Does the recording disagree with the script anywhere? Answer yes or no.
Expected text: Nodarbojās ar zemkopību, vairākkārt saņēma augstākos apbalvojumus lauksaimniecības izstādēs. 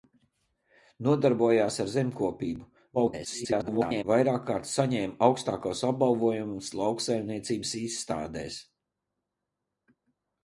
yes